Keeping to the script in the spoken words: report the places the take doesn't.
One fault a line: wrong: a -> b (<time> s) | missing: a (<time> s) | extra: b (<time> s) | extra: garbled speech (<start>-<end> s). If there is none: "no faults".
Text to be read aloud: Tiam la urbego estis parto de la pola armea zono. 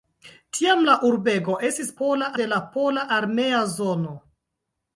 wrong: parto -> pola (2.0 s)